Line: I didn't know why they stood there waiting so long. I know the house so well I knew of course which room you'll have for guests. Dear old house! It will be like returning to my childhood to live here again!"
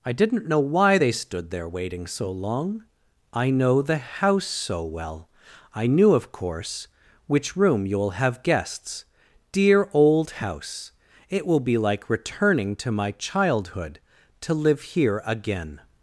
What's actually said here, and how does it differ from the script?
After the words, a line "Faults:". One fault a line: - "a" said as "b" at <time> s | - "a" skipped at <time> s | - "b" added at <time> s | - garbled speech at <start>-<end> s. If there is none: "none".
I didn't know why they stood there waiting so long. I know the house so well I knew of course which room you'll have guests. Dear old house! It will be like returning to my childhood to live here again!"
Faults:
- "for" skipped at 8.4 s